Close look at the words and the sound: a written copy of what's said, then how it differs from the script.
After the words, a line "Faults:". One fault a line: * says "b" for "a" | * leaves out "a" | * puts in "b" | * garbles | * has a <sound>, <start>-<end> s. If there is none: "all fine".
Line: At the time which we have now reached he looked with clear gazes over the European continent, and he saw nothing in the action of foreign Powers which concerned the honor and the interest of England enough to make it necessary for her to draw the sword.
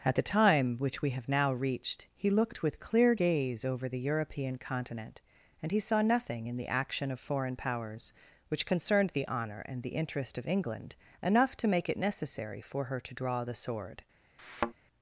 At the time which we have now reached he looked with clear gaze over the European continent, and he saw nothing in the action of foreign Powers which concerned the honor and the interest of England enough to make it necessary for her to draw the sword.
Faults:
* says "gaze" for "gazes"
* has a thud, 14.4-14.7 s